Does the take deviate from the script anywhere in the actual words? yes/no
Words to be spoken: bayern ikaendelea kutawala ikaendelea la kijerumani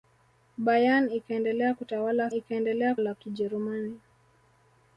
no